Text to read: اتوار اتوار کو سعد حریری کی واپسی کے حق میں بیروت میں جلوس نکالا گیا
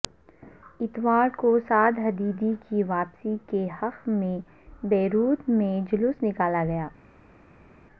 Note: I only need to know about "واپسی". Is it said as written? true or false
true